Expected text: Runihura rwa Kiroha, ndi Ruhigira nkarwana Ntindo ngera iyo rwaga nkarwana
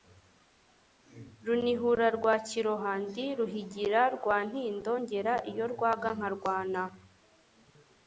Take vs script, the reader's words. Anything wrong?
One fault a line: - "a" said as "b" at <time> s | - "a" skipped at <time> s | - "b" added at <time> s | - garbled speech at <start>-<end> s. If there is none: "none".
- "nkarwana" said as "rwa" at 4.1 s